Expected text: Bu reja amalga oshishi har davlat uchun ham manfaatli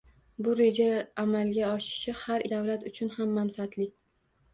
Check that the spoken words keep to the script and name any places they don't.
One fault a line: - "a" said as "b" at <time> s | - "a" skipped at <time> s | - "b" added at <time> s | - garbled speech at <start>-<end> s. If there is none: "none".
none